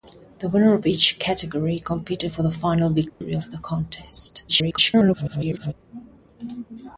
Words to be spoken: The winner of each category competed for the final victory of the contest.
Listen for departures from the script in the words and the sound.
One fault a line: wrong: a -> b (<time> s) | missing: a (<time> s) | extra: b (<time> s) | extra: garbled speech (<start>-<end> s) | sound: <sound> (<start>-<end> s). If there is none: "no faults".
sound: dropout (3.1-3.2 s)
extra: garbled speech (4.5-5.7 s)